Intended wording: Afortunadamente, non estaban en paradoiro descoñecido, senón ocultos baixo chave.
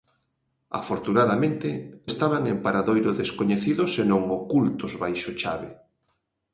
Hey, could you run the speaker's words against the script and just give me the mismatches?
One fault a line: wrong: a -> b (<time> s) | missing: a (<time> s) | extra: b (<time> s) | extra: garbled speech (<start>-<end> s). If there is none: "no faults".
missing: non (1.7 s)